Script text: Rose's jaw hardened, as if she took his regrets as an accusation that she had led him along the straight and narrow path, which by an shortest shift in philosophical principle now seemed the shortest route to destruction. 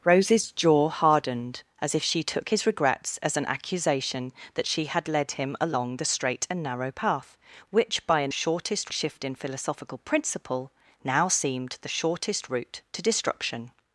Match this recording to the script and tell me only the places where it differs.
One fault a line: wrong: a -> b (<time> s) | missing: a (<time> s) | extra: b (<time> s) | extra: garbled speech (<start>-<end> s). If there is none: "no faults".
no faults